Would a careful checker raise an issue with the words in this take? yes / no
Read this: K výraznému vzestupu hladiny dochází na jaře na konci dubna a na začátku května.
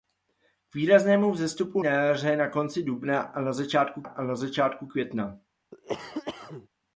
yes